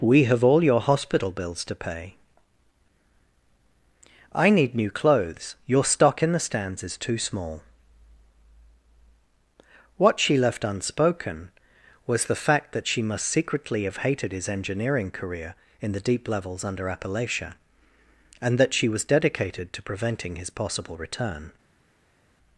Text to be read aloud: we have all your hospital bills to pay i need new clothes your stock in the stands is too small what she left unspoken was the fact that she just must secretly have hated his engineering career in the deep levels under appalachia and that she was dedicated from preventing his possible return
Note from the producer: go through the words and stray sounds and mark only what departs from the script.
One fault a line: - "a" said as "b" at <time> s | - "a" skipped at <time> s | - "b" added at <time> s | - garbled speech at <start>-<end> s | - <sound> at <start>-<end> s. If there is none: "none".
- "just" skipped at 13.0 s
- "from" said as "to" at 19.7 s